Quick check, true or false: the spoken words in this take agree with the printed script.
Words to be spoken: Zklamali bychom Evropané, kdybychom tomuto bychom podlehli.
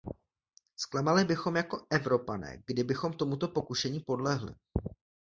false